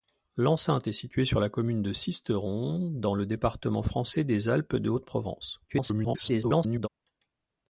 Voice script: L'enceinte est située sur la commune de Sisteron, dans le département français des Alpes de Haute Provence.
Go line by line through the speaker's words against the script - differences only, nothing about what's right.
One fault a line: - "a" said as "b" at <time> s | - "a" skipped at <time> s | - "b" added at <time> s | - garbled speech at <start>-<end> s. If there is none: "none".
- garbled speech at 5.7-6.9 s